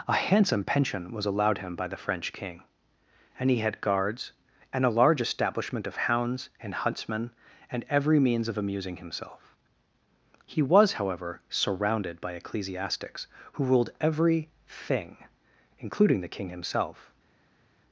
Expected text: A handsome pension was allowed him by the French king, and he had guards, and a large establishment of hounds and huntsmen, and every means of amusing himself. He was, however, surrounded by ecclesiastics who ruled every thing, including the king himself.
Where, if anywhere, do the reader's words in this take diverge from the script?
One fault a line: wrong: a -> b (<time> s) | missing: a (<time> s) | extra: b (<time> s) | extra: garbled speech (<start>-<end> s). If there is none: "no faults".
no faults